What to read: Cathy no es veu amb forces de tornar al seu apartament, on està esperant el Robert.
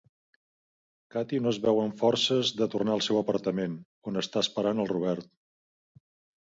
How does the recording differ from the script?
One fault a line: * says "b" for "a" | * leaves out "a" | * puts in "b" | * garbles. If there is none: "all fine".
all fine